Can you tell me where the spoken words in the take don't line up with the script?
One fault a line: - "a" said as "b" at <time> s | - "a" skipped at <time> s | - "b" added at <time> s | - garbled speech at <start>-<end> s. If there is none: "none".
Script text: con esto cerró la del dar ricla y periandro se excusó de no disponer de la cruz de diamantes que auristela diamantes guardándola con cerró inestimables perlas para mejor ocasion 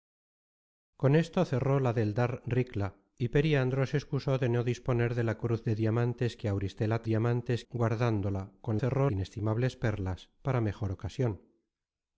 none